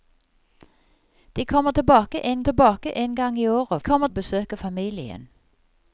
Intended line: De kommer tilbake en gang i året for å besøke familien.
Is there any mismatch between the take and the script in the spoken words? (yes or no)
yes